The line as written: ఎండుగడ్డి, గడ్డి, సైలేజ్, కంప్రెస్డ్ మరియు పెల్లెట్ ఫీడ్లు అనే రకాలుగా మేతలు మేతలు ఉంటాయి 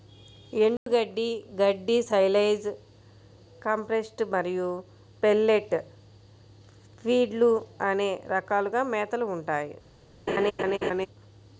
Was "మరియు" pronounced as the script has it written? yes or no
yes